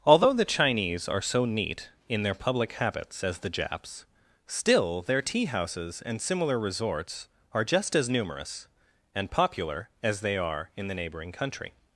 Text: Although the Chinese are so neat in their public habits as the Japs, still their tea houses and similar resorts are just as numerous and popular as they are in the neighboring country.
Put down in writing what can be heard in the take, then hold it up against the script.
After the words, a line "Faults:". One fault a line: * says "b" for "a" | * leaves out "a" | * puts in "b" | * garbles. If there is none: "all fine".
Although the Chinese are so neat in their public habits as the Japs, still their tea houses and similar resorts are just as numerous and popular as they are in the neighboring country.
Faults:
all fine